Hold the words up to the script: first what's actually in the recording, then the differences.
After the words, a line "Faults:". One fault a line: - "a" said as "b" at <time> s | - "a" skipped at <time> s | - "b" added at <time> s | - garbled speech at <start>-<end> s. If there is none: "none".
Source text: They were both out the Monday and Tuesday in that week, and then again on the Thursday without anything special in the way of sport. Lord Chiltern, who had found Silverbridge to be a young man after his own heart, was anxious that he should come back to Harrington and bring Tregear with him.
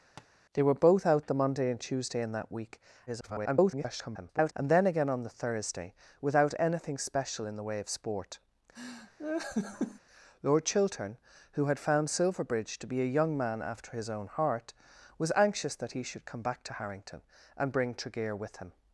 They were both out the Monday and Tuesday in that week, [garbled] and then again on the Thursday without anything special in the way of sport. Lord Chiltern, who had found Silverbridge to be a young man after his own heart, was anxious that he should come back to Harrington and bring Tregear with him.
Faults:
- garbled speech at 3.1-4.5 s